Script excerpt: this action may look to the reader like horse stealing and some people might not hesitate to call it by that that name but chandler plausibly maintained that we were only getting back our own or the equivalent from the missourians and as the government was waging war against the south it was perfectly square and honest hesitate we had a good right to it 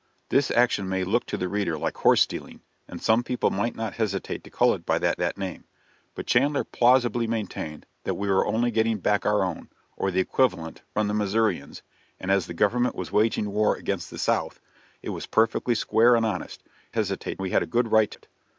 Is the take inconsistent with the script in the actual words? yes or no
no